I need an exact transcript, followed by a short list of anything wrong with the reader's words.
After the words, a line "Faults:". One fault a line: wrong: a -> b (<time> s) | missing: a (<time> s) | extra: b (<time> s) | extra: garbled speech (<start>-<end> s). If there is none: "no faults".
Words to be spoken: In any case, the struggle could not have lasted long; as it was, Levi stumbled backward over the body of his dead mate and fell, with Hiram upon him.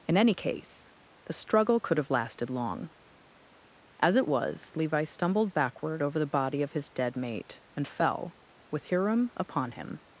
In any case, the struggle could have lasted long; as it was, Levi stumbled backward over the body of his dead mate and fell, with Hiram upon him.
Faults:
missing: not (2.0 s)